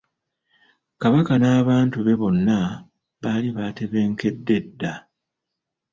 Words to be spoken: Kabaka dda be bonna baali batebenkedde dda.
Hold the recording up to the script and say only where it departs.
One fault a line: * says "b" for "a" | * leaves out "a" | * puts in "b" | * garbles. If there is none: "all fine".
* says "n'abantu" for "dda"